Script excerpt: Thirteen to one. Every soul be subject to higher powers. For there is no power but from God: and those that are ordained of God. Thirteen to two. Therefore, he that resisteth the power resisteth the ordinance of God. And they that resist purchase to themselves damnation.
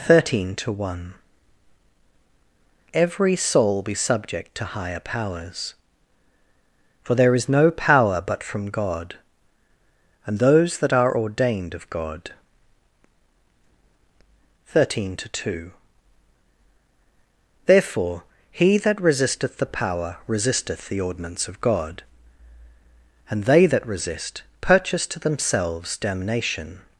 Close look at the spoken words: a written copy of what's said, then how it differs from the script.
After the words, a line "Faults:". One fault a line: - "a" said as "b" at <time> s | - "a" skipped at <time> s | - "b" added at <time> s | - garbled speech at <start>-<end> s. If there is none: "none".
Thirteen to one. Every soul be subject to higher powers. For there is no power but from God: and those that are ordained of God. Thirteen to two. Therefore, he that resisteth the power resisteth the ordinance of God. And they that resist purchase to themselves damnation.
Faults:
none